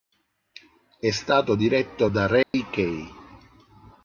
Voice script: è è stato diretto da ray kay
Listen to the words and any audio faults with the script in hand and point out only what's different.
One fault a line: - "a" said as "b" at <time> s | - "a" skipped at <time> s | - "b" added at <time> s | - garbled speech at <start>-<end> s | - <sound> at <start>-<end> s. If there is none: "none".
- "è" skipped at 1.1 s
- dropout at 2.4-2.5 s